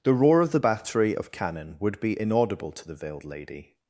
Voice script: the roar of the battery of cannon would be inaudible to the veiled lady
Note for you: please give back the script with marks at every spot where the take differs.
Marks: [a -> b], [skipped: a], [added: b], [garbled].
the roar of the battery of cannon would be inaudible to the veiled lady